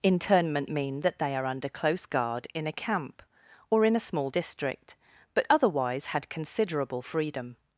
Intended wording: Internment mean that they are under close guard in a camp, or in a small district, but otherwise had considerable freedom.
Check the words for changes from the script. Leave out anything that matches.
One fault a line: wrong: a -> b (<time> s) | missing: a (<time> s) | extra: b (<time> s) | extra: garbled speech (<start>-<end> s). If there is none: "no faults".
no faults